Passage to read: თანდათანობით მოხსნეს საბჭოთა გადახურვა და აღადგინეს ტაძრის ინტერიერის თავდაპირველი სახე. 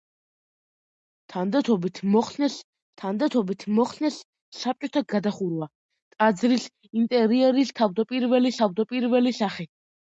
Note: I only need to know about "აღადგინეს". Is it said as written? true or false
false